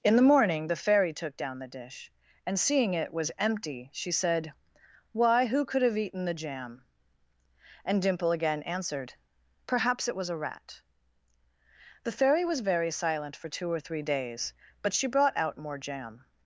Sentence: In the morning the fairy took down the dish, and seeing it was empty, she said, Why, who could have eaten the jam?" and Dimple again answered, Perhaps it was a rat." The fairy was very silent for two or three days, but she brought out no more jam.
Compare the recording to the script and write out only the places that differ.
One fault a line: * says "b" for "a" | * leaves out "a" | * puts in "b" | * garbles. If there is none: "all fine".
* leaves out "no"